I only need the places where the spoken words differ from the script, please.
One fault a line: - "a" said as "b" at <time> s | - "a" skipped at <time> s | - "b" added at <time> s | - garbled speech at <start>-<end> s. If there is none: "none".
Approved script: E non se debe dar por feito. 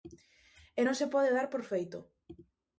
- "debe" said as "pode" at 1.1 s